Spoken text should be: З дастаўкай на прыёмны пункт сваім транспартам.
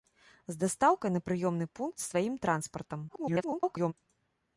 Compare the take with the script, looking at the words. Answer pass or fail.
fail